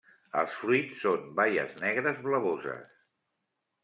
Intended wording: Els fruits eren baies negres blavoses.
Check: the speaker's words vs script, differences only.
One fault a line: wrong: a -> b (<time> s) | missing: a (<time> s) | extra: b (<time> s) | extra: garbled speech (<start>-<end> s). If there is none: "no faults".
wrong: eren -> són (1.0 s)